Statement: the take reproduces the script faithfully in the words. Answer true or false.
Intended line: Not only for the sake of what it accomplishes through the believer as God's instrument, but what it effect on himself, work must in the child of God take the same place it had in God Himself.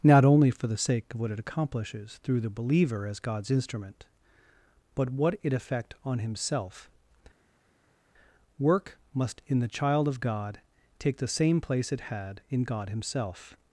true